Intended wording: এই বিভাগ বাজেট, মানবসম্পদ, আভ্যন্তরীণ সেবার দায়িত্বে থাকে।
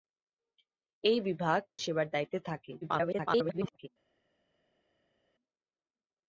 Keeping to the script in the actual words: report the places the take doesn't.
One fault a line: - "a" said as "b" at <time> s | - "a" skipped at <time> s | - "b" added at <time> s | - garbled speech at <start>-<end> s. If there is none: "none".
- "বাজেট মানবসম্পদ আভ্যন্তরীণ" skipped at 1.6 s
- garbled speech at 2.8-3.9 s